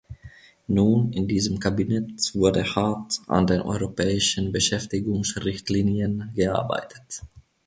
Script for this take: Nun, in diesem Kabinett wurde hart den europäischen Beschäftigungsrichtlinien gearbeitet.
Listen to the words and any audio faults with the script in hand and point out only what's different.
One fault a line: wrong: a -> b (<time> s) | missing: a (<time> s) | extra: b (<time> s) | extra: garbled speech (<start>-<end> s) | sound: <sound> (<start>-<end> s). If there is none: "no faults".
extra: an (3.3 s)